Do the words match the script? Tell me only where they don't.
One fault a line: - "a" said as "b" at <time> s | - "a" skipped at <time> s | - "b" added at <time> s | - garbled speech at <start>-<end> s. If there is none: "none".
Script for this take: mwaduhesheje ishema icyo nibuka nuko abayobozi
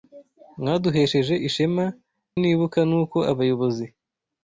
- "icyo" skipped at 1.9 s